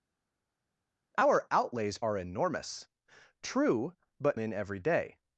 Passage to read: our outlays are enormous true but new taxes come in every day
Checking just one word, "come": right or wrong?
wrong